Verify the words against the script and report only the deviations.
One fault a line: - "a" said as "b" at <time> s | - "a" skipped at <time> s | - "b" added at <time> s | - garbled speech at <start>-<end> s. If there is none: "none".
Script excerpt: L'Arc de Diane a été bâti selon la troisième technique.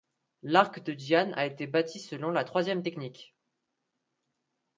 none